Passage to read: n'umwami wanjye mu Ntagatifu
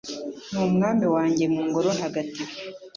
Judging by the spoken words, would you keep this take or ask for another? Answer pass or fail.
fail